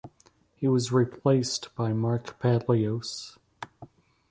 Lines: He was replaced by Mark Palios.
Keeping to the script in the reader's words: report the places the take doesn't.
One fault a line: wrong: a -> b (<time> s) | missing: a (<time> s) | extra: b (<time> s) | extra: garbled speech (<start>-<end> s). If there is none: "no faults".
no faults